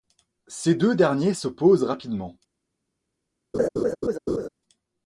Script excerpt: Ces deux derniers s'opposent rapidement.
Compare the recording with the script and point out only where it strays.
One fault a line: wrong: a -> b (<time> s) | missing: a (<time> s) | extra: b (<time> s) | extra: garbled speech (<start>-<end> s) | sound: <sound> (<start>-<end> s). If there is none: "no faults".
sound: laugh (3.5-4.5 s)